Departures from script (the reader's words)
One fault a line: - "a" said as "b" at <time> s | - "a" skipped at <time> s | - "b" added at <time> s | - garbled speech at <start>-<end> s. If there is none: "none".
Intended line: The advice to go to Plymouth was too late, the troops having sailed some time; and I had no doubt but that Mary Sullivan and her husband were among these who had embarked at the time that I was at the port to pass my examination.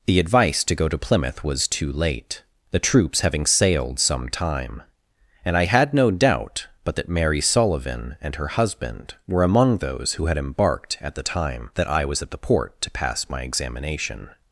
- "these" said as "those" at 9.8 s